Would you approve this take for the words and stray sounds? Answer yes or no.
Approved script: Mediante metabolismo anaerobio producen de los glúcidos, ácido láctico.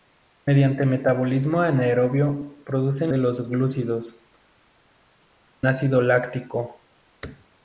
yes